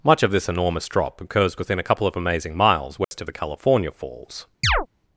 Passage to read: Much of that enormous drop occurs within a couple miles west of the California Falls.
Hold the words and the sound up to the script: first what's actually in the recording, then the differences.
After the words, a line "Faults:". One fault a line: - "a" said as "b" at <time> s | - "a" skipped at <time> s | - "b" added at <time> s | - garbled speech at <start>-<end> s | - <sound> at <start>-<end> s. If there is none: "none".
Much of this enormous drop occurs within a couple of amazing miles west of the California Falls.
Faults:
- "that" said as "this" at 0.3 s
- "of amazing" added at 2.1 s
- dropout at 3.0-3.1 s
- chirp at 4.6-4.9 s